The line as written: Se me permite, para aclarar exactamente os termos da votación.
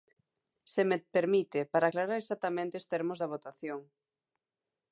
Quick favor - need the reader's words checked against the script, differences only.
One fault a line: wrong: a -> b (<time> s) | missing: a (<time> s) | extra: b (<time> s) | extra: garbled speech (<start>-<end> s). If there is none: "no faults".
no faults